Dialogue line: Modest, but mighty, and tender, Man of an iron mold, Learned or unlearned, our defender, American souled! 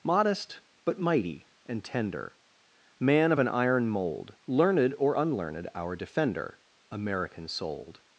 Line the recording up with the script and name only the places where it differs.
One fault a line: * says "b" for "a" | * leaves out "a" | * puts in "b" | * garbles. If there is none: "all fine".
all fine